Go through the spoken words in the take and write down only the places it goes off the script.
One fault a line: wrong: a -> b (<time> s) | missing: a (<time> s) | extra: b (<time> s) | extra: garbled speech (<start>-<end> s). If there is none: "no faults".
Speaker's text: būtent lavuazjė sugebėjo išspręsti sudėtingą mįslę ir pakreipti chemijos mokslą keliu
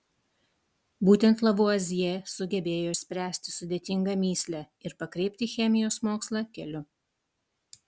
no faults